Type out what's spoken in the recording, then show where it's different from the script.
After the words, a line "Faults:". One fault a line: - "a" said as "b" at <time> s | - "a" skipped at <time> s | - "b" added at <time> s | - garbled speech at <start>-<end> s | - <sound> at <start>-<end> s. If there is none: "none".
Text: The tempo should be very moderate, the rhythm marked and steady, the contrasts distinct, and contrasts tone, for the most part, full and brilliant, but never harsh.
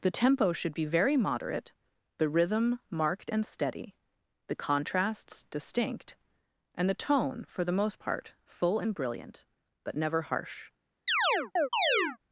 The tempo should be very moderate, the rhythm marked and steady, the contrasts distinct, and the tone, for the most part, full and brilliant, but never harsh.
Faults:
- "contrasts" said as "the" at 6.9 s
- chirp at 11.1-12.2 s